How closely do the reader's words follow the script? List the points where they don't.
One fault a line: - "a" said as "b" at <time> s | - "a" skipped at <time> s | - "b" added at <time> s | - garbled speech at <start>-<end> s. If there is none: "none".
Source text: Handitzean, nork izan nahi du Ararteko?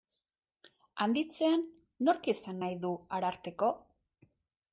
none